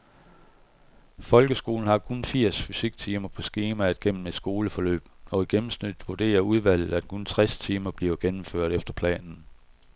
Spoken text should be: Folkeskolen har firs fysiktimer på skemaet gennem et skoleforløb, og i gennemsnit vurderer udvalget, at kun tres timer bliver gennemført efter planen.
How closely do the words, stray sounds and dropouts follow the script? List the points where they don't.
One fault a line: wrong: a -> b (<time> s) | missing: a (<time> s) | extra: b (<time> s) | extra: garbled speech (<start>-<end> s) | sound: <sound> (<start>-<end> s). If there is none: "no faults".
extra: kun (2.0 s)